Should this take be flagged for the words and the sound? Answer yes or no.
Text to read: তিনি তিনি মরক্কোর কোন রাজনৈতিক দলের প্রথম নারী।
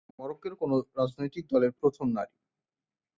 no